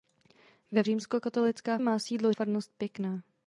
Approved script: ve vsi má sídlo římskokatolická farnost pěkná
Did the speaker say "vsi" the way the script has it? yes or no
no